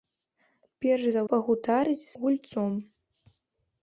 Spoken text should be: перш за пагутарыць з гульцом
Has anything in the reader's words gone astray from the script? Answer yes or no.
no